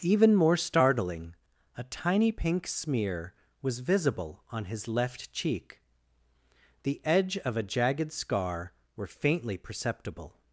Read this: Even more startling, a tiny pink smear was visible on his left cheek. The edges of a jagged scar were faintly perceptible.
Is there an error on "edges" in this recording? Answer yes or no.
yes